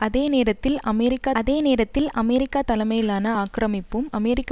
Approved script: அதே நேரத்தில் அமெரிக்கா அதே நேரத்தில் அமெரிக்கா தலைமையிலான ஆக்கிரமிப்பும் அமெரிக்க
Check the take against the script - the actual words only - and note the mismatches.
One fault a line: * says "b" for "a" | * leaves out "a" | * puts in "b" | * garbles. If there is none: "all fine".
all fine